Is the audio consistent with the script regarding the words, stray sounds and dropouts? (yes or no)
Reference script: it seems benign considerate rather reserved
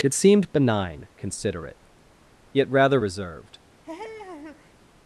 no